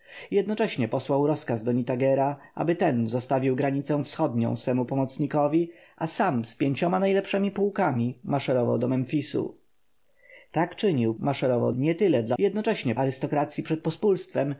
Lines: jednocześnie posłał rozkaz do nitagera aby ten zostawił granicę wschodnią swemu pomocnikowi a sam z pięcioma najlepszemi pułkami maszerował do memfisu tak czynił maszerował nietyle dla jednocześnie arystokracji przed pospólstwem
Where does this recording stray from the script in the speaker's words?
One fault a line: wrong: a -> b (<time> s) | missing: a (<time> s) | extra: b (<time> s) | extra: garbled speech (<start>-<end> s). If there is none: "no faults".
no faults